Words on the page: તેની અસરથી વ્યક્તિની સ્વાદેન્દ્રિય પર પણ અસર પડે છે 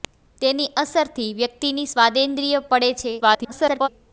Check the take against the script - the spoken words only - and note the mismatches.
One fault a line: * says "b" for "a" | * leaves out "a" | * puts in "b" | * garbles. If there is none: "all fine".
* leaves out "પર પણ અસર"
* garbles